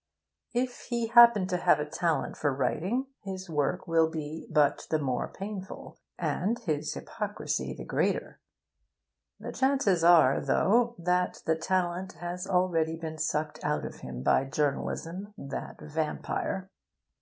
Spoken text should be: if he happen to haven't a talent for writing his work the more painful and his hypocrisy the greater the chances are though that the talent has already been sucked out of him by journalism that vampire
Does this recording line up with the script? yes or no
no